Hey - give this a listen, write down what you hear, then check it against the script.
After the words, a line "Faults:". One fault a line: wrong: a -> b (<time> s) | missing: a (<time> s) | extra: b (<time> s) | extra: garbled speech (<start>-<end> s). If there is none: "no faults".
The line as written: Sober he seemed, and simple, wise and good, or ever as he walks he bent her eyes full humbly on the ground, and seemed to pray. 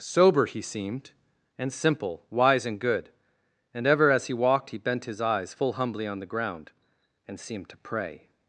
Sober he seemed, and simple, wise and good, and ever as he walked he bent his eyes full humbly on the ground, and seemed to pray.
Faults:
wrong: or -> and (3.7 s)
wrong: walks -> walked (4.3 s)
wrong: her -> his (5.0 s)